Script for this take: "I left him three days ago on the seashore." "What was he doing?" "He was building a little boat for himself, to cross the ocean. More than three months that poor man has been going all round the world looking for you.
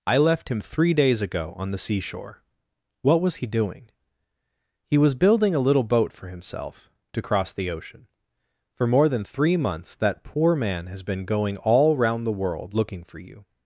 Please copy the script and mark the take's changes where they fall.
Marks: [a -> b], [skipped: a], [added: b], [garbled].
"I left him three days ago on the seashore." "What was he doing?" "He was building a little boat for himself, to cross the ocean. [added: For] More than three months that poor man has been going all round the world looking for you.